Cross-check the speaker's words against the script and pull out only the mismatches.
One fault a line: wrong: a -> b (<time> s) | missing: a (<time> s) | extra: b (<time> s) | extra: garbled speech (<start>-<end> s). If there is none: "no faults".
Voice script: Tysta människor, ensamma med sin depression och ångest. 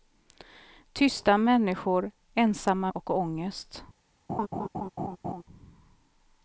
missing: med sin depression (2.9 s)